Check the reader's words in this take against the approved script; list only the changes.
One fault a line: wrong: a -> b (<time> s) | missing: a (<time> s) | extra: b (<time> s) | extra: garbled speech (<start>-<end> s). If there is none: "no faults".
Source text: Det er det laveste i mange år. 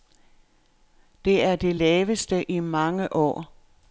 no faults